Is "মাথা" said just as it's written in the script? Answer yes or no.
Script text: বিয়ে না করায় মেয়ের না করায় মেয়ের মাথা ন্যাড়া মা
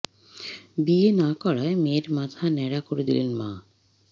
no